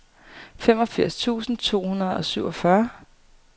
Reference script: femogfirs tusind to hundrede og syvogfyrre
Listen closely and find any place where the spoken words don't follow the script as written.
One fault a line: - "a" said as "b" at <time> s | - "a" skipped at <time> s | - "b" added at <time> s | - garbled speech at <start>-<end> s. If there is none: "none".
none